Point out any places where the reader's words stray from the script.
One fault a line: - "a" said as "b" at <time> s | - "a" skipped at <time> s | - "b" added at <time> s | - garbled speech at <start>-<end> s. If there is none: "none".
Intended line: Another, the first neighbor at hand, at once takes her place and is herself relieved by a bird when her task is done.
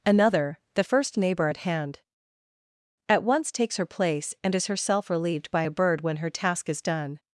none